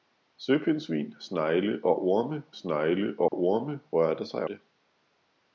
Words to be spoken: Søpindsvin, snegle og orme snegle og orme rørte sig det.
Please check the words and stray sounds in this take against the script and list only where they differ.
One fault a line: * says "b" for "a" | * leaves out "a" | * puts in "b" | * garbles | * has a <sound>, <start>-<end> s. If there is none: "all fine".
* has a dropout, 3.3-3.3 s